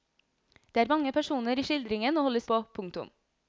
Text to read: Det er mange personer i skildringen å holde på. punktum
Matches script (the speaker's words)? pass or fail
pass